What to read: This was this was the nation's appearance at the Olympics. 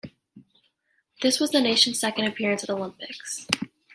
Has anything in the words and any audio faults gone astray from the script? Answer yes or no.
yes